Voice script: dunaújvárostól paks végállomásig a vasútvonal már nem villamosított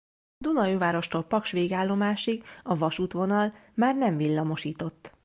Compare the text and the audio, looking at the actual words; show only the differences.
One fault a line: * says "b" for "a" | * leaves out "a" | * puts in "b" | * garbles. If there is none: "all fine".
all fine